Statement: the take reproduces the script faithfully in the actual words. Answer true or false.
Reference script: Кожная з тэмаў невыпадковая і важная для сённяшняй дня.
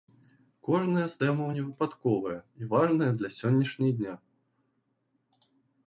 true